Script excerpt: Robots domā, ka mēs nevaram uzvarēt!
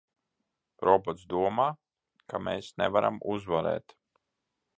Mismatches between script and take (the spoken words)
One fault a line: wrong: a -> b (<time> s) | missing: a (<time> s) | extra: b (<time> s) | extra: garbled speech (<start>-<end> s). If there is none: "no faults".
no faults